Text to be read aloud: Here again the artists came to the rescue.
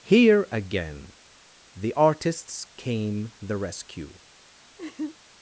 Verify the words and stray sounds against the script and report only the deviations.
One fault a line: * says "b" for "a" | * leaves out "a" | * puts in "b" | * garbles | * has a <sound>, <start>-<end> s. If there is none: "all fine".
* leaves out "to"
* has a laugh, 4.8-5.2 s